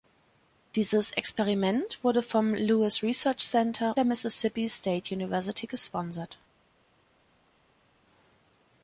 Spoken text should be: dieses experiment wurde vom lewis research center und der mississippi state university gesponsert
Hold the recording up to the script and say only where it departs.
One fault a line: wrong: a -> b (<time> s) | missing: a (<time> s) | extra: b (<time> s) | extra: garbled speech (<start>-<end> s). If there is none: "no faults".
missing: und (4.0 s)